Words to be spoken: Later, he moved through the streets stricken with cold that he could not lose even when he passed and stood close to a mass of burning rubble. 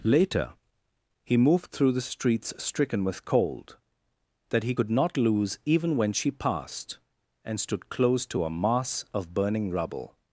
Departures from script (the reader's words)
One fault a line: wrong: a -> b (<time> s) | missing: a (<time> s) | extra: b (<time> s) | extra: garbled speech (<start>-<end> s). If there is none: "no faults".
wrong: he -> she (6.1 s)